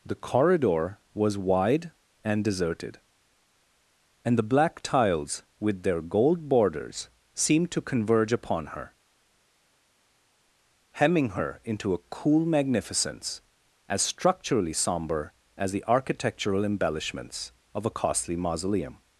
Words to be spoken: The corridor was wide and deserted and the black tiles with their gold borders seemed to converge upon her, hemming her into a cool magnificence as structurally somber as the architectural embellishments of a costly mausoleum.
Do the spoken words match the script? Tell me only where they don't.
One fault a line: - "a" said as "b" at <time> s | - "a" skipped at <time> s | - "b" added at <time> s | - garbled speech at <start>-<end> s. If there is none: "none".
none